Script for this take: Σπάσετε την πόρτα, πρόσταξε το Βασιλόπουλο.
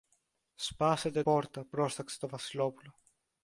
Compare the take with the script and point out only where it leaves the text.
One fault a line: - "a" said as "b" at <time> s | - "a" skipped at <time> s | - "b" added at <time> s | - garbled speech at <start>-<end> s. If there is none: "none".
- "την" skipped at 1.2 s